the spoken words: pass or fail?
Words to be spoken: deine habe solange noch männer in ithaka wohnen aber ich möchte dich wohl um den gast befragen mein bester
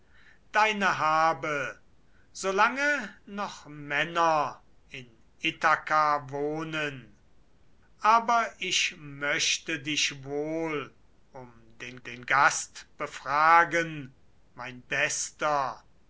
fail